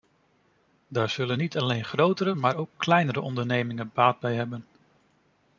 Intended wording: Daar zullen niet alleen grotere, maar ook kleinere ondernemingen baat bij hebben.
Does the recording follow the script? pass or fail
pass